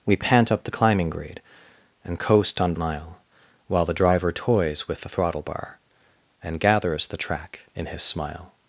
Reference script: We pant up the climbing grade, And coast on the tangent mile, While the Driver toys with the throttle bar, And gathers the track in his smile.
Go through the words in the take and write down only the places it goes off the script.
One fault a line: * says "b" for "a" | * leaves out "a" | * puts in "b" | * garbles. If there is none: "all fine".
* leaves out "the tangent"